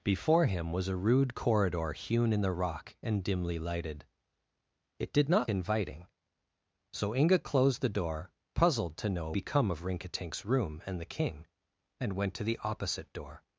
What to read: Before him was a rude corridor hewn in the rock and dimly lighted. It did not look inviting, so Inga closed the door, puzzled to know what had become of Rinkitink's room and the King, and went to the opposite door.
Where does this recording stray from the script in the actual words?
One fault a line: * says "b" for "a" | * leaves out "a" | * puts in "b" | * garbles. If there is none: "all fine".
* leaves out "look"
* leaves out "what had"